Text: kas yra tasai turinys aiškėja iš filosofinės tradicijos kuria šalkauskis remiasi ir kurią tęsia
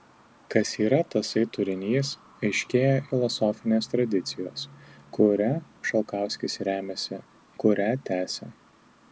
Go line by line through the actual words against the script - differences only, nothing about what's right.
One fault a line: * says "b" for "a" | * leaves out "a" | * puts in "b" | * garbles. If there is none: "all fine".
* leaves out "iš"
* leaves out "ir"